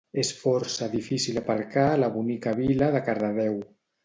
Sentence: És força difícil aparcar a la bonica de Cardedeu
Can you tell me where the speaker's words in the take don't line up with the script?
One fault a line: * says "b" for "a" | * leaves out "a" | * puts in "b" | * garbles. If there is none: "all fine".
* puts in "vila"